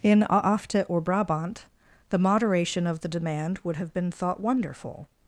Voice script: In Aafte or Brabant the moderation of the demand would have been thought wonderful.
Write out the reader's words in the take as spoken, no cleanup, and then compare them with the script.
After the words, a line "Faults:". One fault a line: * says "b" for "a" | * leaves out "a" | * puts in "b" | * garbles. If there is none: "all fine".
In Aafte or Brabant the moderation of the demand would have been thought wonderful.
Faults:
all fine